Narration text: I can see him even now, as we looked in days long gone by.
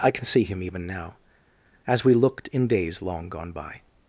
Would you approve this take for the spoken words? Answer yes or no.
yes